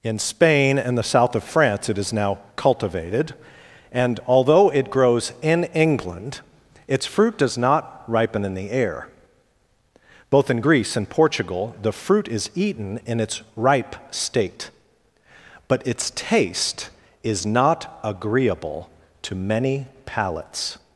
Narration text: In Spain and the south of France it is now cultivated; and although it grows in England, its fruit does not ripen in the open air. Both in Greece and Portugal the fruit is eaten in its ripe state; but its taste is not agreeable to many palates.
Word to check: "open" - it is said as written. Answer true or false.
false